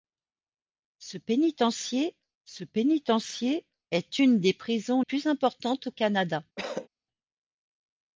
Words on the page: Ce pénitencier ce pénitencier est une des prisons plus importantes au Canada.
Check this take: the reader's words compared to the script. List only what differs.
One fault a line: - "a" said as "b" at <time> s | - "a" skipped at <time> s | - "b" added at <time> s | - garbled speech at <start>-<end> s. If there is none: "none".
none